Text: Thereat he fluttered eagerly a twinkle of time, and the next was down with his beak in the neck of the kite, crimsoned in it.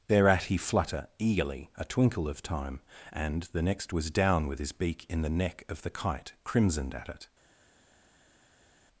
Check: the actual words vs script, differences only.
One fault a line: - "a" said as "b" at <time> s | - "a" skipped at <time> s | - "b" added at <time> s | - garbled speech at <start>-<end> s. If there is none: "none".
- "fluttered" said as "flutter" at 0.6 s
- "in" said as "at" at 6.9 s